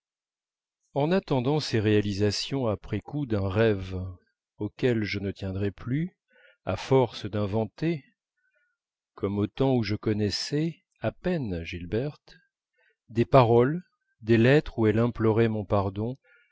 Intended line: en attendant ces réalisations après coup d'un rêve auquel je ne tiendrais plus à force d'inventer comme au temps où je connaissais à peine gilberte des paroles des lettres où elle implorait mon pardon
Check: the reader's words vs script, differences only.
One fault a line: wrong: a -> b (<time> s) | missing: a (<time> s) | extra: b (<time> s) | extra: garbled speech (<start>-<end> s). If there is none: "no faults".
no faults